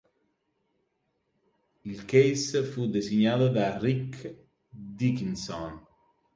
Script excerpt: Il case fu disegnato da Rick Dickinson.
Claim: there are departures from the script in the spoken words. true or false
false